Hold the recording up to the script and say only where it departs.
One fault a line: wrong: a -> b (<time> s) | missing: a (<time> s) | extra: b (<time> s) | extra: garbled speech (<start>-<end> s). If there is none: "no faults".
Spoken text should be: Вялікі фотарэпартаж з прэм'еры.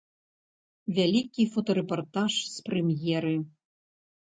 no faults